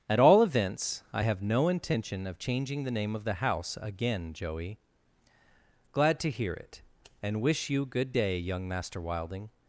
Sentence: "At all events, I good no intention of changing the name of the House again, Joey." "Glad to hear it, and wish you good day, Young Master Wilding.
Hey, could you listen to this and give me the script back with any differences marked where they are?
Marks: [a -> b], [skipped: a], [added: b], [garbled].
"At all events, I [good -> have] no intention of changing the name of the House again, Joey." "Glad to hear it, and wish you good day, Young Master Wilding.